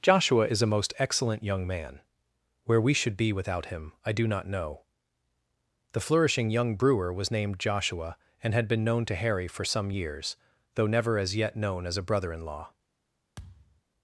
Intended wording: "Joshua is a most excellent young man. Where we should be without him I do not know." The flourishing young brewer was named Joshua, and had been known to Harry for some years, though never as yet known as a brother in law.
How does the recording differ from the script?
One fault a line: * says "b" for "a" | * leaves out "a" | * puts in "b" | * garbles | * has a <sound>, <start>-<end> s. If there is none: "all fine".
* has a thud, 13.4-13.8 s